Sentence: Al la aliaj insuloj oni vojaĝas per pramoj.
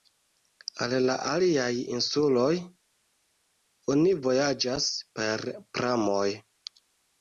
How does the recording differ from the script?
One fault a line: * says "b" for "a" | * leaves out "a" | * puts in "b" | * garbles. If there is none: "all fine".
all fine